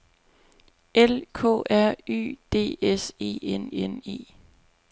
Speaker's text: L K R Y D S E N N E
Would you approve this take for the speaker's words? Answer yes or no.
yes